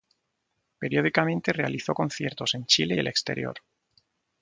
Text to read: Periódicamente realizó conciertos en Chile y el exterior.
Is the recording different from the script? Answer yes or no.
no